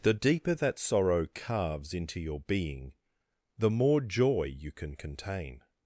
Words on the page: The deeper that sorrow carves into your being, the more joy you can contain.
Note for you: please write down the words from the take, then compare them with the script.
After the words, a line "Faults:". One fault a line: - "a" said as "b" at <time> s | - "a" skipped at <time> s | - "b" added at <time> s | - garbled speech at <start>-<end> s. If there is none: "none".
The deeper that sorrow carves into your being, the more joy you can contain.
Faults:
none